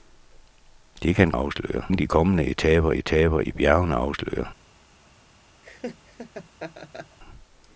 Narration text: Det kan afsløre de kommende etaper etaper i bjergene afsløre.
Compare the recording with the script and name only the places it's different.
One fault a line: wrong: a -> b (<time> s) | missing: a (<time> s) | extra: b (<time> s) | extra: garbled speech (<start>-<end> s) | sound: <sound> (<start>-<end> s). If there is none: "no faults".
sound: laugh (5.6-7.2 s)